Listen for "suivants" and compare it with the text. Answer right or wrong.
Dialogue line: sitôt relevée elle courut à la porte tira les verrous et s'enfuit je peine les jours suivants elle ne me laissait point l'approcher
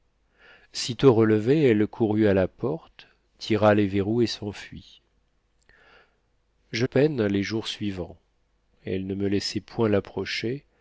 right